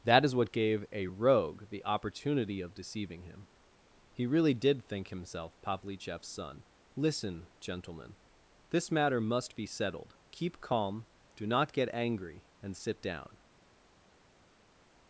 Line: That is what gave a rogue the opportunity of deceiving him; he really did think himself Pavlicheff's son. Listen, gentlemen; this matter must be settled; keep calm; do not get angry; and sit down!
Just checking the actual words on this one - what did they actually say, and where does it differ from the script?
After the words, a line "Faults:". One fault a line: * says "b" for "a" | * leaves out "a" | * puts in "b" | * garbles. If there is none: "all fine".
That is what gave a rogue the opportunity of deceiving him; he really did think himself Pavlicheff's son. Listen, gentlemen; this matter must be settled; keep calm; do not get angry; and sit down!
Faults:
all fine